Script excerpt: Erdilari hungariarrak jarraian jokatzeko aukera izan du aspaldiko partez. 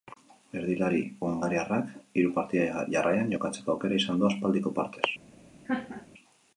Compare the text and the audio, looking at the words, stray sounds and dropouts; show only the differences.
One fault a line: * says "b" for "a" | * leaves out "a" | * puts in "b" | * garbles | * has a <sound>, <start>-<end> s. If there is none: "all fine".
* puts in "hiru partida"
* has a laugh, 5.7-6.1 s